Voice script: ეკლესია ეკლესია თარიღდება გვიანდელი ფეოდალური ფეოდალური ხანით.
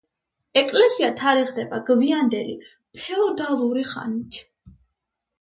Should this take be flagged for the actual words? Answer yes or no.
yes